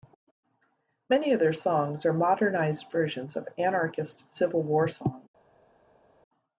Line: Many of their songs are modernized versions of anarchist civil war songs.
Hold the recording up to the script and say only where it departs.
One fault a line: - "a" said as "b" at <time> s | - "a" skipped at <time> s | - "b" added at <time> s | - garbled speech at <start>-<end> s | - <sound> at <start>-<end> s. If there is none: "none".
none